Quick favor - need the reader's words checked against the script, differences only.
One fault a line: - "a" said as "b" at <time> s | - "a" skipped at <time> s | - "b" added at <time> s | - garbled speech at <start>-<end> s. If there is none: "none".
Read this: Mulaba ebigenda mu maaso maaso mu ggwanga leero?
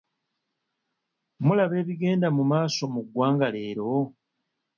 - "maaso" skipped at 2.8 s